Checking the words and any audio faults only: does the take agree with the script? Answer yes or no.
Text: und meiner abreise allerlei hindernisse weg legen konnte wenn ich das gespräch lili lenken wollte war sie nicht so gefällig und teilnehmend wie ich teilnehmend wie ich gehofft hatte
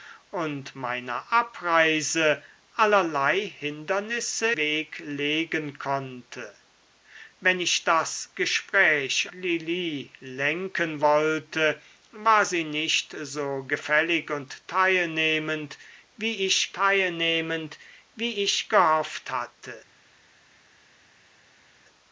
yes